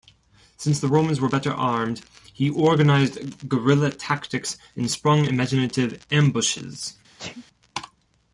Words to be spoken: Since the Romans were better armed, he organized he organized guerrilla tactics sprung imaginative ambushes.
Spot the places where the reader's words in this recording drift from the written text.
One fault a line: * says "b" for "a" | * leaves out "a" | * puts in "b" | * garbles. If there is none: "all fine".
* leaves out "he organized"
* puts in "and"